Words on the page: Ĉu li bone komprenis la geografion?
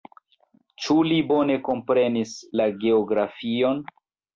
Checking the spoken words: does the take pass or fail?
pass